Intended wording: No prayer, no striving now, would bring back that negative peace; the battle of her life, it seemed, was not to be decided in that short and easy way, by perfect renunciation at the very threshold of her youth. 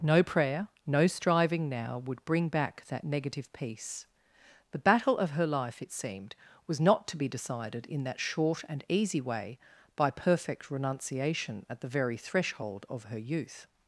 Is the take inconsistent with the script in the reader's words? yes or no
no